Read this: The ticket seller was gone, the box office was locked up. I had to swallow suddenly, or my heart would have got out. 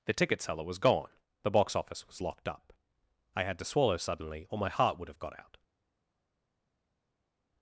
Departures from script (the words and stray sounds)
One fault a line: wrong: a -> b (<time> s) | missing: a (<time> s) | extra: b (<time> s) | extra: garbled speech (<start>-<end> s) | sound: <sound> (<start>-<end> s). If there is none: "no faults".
no faults